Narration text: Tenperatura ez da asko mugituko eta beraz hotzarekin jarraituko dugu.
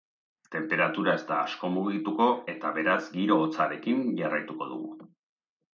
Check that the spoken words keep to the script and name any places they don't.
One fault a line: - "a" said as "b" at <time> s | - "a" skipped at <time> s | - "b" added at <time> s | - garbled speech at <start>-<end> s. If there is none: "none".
- "giro" added at 3.2 s